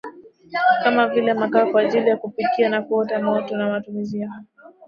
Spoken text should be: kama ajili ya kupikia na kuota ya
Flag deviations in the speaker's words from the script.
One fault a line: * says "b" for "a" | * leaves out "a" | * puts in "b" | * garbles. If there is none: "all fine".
* puts in "vile makaa kwa"
* puts in "moto na matumizi"